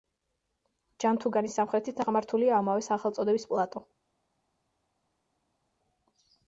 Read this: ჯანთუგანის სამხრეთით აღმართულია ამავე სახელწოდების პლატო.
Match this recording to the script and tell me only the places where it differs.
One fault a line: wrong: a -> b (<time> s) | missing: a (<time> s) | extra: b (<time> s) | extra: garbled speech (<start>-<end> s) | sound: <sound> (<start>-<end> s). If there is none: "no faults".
no faults